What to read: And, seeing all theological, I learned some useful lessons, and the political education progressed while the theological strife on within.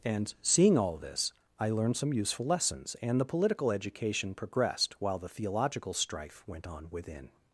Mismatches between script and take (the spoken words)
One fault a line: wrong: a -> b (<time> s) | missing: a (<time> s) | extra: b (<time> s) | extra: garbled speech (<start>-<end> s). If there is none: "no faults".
wrong: theological -> this (1.0 s)
extra: went (6.5 s)